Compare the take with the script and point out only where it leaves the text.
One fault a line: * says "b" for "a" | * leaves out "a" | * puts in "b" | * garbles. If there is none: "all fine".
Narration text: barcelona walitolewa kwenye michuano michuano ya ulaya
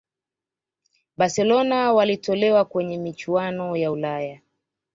* leaves out "michuano"